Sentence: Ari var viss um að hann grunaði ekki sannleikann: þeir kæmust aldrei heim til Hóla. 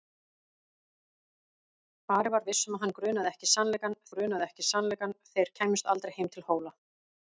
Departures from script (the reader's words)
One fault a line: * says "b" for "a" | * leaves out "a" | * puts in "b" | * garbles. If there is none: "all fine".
* puts in "grunaði ekki sannleikann"